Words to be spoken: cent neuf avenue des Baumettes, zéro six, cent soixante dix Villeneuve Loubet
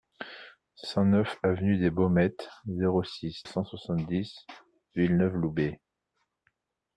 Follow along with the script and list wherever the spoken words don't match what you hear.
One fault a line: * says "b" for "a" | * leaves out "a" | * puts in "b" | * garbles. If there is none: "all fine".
all fine